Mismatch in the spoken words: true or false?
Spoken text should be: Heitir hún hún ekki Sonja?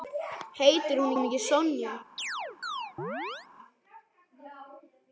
false